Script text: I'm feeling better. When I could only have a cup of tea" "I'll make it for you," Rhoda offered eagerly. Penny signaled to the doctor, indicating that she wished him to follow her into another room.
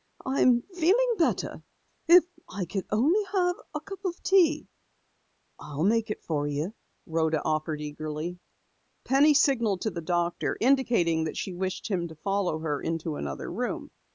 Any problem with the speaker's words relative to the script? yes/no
yes